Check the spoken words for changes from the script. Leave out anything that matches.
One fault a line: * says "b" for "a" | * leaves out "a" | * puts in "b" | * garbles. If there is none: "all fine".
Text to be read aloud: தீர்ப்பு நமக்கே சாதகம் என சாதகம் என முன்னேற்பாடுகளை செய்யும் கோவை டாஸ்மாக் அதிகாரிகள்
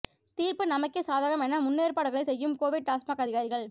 * leaves out "சாதகம் என"